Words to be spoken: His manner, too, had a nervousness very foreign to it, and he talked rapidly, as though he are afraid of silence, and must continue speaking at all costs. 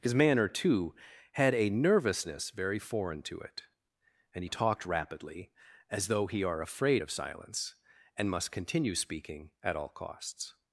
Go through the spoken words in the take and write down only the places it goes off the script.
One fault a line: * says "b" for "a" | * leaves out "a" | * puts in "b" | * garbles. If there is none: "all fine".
all fine